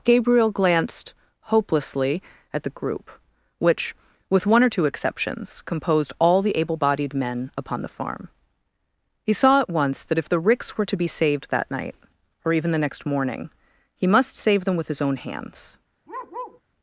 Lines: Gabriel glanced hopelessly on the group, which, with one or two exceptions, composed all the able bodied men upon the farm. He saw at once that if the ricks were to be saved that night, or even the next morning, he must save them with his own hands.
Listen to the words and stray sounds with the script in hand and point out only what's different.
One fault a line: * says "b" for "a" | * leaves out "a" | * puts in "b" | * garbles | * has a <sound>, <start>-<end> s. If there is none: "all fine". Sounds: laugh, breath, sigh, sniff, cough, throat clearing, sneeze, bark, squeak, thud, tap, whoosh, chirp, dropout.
* says "at" for "on"
* has a bark, 16.1-16.6 s